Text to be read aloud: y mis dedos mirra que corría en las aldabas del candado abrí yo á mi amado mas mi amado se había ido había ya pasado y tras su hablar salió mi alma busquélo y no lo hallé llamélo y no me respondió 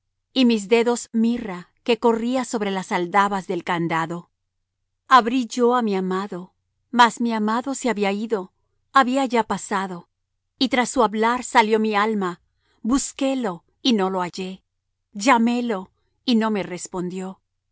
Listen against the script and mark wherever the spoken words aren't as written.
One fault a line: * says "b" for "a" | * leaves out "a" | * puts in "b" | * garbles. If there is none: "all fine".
* says "sobre" for "en"